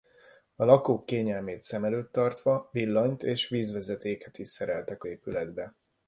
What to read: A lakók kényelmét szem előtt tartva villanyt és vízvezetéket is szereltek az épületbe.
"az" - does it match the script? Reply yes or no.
no